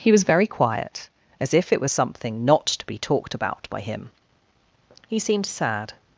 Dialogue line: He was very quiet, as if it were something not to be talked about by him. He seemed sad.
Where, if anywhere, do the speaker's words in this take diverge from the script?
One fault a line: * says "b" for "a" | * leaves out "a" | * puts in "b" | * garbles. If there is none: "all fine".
* says "was" for "were"